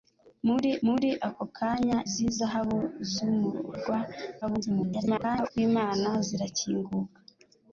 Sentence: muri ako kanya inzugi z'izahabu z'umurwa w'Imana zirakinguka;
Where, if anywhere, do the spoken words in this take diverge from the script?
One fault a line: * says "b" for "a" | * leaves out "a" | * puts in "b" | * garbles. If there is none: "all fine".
* puts in "muri"
* leaves out "inzugi"
* garbles